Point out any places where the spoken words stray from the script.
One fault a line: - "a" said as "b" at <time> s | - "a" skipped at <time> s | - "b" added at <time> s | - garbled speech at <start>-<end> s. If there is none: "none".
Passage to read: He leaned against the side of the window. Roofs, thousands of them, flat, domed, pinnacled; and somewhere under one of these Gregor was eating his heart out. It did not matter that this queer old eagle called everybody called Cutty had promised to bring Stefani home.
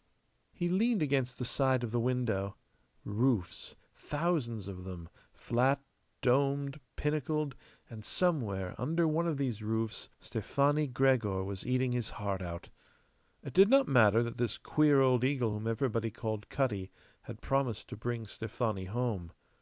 - "roofs Stefani" added at 9.6 s
- "called" said as "whom" at 15.5 s